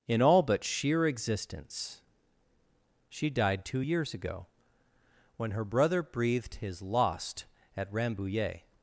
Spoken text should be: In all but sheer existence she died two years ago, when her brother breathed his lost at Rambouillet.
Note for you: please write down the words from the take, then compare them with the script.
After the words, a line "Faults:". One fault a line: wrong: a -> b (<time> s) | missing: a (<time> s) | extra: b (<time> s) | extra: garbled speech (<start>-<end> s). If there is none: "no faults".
In all but sheer existence she died two years ago, when her brother breathed his lost at Rambouillet.
Faults:
no faults